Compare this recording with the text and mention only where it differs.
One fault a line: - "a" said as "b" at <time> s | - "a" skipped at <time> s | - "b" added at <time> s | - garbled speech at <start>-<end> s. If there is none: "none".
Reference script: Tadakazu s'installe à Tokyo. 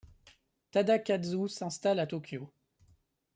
none